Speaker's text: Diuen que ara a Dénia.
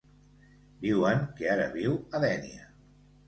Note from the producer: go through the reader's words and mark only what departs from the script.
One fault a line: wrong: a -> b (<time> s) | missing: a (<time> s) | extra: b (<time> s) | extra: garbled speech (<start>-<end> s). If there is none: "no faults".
extra: viu (1.8 s)